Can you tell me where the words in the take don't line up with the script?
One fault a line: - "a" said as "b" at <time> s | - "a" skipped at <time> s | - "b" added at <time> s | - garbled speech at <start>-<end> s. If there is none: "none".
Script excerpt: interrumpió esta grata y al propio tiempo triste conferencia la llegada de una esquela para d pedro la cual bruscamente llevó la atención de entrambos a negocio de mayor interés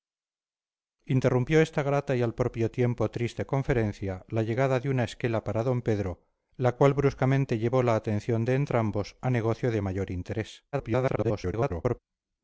- garbled speech at 10.7-12.0 s